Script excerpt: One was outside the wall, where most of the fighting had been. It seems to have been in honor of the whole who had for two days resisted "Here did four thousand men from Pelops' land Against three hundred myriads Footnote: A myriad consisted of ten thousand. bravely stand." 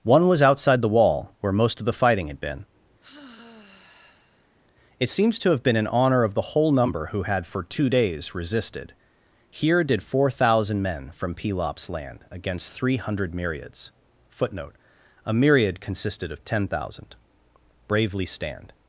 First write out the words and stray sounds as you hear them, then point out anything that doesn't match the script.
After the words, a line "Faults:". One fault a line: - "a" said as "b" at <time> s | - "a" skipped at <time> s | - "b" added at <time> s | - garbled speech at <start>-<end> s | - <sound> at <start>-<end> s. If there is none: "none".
One was outside the wall, where most of the fighting had been. It seems to have been in honor of the whole number who had for two days resisted "Here did four thousand men from Pelops' land Against three hundred myriads Footnote: A myriad consisted of ten thousand. bravely stand."
Faults:
- sigh at 3.0-4.6 s
- "number" added at 6.7 s